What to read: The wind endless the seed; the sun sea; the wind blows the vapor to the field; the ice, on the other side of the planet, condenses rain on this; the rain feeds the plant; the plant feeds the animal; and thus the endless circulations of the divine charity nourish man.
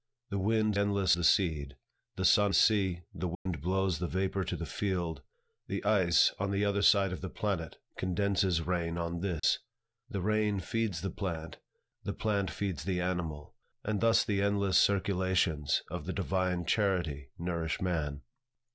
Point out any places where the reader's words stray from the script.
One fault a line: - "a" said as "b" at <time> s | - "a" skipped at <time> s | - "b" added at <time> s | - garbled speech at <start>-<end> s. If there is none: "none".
none